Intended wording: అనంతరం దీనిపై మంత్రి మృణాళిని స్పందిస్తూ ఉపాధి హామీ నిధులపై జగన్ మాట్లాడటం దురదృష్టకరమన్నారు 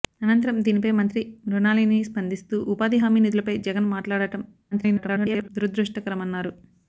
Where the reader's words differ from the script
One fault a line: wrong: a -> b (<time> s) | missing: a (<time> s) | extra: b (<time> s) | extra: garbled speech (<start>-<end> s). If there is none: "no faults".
extra: garbled speech (4.7-5.5 s)